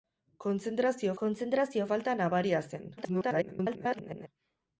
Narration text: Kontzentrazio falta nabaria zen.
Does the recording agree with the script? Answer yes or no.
no